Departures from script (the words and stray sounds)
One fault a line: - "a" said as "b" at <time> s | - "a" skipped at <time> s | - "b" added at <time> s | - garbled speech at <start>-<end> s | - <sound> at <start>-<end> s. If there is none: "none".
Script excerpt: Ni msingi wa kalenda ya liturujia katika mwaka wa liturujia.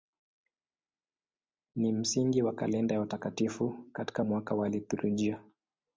- "liturujia" said as "watakatifu" at 3.0 s